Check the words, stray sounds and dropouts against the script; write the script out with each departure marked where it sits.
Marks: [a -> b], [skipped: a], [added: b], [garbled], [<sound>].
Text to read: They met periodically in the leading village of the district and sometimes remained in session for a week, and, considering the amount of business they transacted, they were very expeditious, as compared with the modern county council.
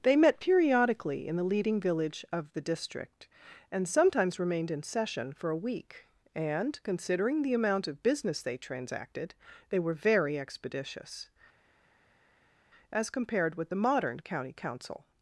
They met periodically in the leading village of the district and sometimes remained in session for a week, and, considering the amount of business they transacted, they were very expeditious, as compared with the modern county council.